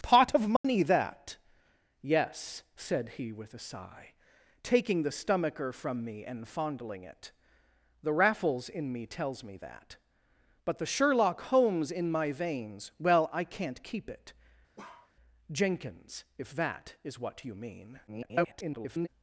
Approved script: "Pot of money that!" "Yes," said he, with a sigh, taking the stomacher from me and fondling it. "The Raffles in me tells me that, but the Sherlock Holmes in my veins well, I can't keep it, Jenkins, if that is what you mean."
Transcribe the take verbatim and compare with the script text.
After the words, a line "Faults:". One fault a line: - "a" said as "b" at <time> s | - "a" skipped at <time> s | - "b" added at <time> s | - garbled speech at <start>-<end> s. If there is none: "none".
"Pot of money that!" "Yes," said he, with a sigh, taking the stomacher from me and fondling it. "The Raffles in me tells me that, but the Sherlock Holmes in my veins well, I can't keep it, Jenkins, if that is what you mean." [garbled]
Faults:
- garbled speech at 18.1-19.1 s